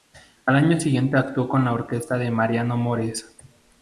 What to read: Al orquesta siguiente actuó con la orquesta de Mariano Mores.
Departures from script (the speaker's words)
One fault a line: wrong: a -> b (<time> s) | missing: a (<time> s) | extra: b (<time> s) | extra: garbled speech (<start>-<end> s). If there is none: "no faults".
wrong: orquesta -> año (0.6 s)